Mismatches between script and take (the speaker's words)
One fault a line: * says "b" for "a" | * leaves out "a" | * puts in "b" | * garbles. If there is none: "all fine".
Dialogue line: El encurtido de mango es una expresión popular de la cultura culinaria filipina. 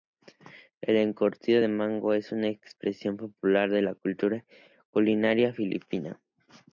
all fine